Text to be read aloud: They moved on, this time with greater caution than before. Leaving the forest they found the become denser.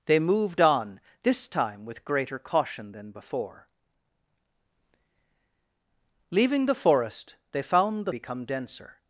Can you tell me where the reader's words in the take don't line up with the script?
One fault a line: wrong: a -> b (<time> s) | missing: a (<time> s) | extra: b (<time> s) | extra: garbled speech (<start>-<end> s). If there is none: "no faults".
no faults